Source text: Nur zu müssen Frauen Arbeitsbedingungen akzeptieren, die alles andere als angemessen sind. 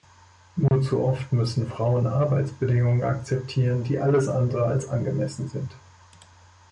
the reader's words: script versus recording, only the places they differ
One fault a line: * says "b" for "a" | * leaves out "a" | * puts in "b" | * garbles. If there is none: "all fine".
* puts in "oft"